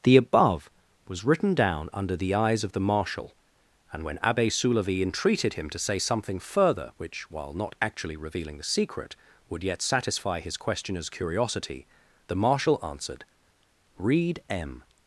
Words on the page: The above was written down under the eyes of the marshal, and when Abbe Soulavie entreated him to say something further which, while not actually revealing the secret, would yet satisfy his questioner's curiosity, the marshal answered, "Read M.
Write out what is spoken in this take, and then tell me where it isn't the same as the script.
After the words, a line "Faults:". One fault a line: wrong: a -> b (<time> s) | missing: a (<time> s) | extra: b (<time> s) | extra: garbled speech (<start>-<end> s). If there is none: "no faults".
The above was written down under the eyes of the marshal, and when Abbe Soulavie entreated him to say something further which, while not actually revealing the secret, would yet satisfy his questioner's curiosity, the marshal answered, "Read M.
Faults:
no faults